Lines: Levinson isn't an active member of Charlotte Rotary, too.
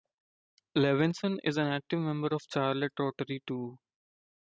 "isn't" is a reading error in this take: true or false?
true